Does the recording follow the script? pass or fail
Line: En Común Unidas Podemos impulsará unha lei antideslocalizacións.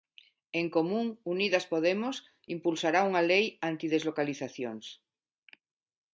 pass